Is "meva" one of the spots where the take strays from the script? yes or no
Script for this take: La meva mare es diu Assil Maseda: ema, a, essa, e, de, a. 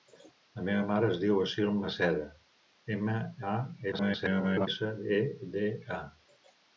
no